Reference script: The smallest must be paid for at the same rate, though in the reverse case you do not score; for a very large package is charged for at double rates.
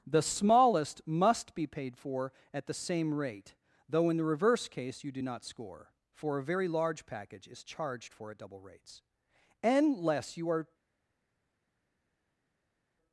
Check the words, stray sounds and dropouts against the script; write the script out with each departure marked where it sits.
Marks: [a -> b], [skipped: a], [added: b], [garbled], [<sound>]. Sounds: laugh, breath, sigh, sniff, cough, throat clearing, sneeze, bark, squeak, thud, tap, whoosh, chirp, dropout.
The smallest must be paid for at the same rate, though in the reverse case you do not score; for a very large package is charged for at double rates. [added: Unless you are]